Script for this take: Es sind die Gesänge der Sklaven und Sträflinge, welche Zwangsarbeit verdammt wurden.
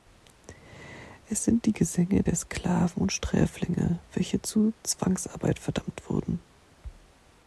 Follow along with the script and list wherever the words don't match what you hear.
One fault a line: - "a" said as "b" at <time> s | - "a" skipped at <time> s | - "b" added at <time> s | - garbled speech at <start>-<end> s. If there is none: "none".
- "zu" added at 4.4 s